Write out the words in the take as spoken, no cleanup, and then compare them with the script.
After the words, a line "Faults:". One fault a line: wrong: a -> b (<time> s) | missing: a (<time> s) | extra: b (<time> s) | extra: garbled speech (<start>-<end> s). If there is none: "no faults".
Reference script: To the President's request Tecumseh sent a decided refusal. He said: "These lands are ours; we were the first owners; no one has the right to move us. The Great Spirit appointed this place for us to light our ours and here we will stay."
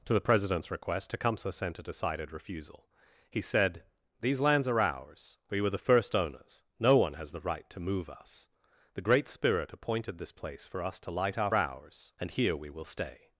To the President's request Tecumseh sent a decided refusal. He said: "These lands are ours; we were the first owners; no one has the right to move us. The Great Spirit appointed this place for us to light our ours and here we will stay."
Faults:
no faults